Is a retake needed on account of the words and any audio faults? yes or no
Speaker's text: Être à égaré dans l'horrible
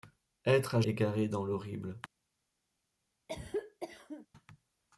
yes